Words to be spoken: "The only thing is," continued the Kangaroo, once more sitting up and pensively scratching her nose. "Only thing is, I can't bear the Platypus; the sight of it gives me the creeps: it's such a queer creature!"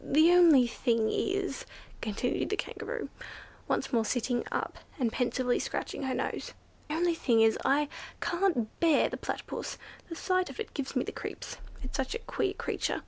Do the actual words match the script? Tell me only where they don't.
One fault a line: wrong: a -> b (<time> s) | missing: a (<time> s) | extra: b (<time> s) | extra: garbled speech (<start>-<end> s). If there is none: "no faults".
no faults